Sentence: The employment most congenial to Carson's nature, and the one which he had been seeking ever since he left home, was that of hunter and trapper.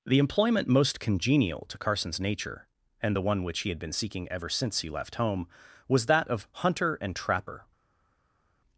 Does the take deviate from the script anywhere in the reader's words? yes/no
no